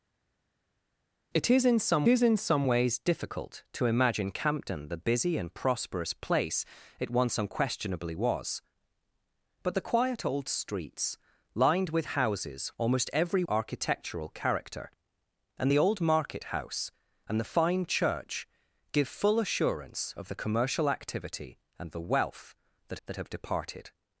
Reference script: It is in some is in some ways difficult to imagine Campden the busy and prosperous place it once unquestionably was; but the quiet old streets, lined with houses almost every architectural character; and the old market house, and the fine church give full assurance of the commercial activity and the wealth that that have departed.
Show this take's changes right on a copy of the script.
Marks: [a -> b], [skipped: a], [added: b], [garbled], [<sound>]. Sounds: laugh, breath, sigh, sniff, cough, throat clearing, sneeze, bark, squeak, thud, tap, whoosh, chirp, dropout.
It is in some is in some ways difficult to imagine Campden the busy and prosperous place it once unquestionably was; but the quiet old streets, lined with houses almost every architectural character; and the old market house, and the fine church give full assurance of the commercial activity and the wealth that that have departed.